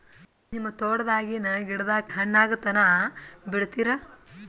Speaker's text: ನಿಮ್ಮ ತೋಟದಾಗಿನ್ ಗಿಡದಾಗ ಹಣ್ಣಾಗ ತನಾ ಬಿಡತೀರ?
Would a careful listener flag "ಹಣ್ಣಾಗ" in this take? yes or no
no